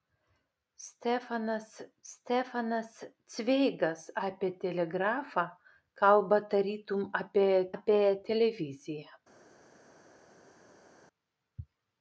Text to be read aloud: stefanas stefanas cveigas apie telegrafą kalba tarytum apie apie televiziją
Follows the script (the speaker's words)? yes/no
yes